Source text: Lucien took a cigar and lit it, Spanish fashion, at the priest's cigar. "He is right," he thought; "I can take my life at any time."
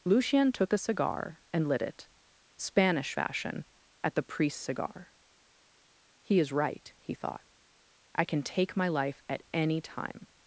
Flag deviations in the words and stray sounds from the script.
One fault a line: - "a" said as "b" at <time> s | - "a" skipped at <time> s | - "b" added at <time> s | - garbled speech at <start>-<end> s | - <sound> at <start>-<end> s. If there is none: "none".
none